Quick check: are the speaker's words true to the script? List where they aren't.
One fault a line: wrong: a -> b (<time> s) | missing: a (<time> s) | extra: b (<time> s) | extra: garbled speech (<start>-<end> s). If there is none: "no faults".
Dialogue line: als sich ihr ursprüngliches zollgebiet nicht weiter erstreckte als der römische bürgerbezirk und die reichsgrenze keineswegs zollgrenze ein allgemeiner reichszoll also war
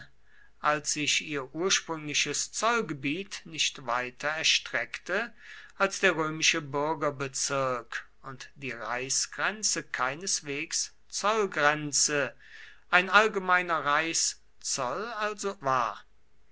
no faults